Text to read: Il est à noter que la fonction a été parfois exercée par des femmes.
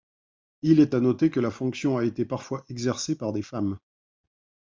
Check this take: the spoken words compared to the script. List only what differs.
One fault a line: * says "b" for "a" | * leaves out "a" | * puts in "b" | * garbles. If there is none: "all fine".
all fine